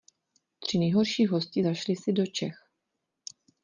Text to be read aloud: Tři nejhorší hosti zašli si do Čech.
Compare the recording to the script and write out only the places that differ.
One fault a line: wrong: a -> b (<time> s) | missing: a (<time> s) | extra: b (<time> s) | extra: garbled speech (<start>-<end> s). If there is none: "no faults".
no faults